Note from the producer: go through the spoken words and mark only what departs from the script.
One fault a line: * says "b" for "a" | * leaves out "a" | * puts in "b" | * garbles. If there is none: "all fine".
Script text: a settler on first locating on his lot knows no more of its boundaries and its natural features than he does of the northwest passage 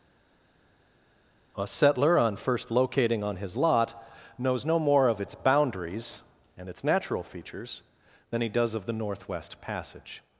all fine